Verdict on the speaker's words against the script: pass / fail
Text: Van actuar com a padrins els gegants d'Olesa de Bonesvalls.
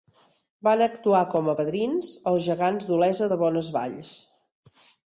pass